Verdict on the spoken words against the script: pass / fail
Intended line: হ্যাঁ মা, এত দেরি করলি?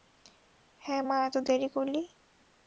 pass